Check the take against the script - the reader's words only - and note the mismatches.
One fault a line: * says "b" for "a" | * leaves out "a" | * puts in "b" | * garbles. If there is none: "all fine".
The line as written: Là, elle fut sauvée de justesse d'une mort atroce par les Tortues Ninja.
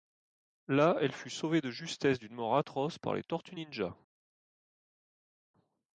all fine